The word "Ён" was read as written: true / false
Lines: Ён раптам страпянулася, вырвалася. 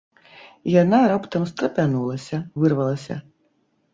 false